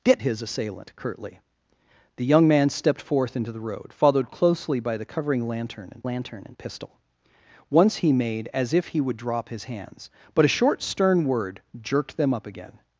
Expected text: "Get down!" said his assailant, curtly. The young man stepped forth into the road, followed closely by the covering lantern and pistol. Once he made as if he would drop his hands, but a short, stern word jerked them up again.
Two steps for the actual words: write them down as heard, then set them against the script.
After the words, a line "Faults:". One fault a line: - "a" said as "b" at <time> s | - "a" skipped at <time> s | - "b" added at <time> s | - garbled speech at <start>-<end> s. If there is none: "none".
"Get his assailant, curtly. The young man stepped forth into the road, followed closely by the covering lantern and lantern and pistol. Once he made as if he would drop his hands, but a short, stern word jerked them up again.
Faults:
- "down said" skipped at 0.2 s
- "lantern and" added at 6.0 s